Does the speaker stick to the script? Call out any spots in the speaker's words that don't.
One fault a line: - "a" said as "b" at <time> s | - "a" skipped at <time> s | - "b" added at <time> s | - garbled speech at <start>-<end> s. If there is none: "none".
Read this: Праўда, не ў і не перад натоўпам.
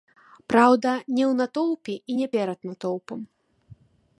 - "натоўпе" added at 1.4 s